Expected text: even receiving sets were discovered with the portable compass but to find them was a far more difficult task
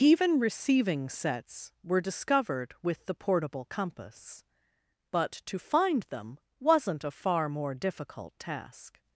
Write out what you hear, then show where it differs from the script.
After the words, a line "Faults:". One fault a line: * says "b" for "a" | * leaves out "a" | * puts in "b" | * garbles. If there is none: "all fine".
even receiving sets were discovered with the portable compass but to find them wasn't a far more difficult task
Faults:
* says "wasn't" for "was"